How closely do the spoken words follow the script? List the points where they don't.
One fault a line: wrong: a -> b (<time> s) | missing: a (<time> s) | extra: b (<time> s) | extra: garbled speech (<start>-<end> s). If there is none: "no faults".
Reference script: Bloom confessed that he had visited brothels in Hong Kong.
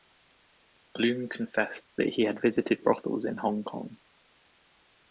no faults